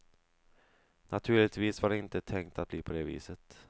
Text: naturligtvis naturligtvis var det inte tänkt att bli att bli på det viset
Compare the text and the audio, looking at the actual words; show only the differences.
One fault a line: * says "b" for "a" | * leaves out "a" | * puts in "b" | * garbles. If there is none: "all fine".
* leaves out "naturligtvis"
* leaves out "att bli"